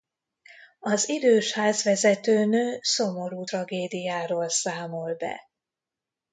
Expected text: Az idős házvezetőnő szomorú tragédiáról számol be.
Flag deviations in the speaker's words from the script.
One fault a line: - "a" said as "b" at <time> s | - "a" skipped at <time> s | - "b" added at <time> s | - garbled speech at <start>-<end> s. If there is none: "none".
none